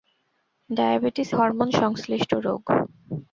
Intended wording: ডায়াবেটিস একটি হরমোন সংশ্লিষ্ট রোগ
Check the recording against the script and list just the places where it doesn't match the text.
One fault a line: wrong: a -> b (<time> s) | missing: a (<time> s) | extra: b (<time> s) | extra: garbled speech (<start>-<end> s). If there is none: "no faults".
missing: একটি (1.3 s)